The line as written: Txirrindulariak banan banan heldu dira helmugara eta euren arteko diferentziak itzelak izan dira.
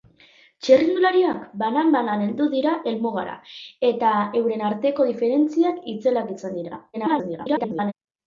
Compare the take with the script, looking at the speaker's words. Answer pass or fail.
fail